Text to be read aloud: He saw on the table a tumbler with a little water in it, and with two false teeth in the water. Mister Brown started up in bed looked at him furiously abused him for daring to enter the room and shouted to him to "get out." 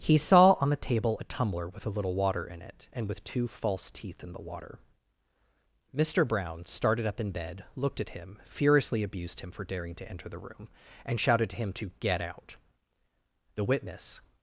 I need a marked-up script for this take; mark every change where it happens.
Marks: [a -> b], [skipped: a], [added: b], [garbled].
He saw on the table a tumbler with a little water in it, and with two false teeth in the water. Mister Brown started up in bed looked at him furiously abused him for daring to enter the room and shouted to him to "get out." [added: The witness]